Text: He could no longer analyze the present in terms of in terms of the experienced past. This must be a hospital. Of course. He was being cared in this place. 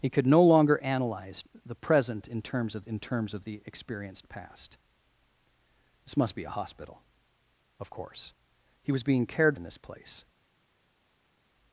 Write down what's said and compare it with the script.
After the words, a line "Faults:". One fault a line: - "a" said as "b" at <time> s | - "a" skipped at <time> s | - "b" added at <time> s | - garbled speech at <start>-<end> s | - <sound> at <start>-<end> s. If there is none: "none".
He could no longer analyze the present in terms of in terms of the experienced past. This must be a hospital. Of course. He was being cared in this place.
Faults:
none